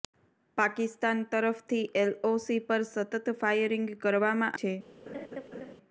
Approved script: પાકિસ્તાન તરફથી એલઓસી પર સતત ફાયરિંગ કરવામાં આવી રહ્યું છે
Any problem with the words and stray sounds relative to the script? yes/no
yes